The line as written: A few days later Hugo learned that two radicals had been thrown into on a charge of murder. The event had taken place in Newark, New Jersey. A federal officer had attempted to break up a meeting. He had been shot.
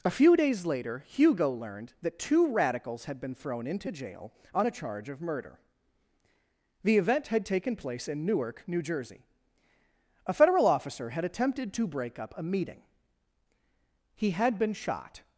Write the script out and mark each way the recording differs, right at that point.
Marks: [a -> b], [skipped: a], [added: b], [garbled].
A few days later Hugo learned that two radicals had been thrown into [added: jail] on a charge of murder. The event had taken place in Newark, New Jersey. A federal officer had attempted to break up a meeting. He had been shot.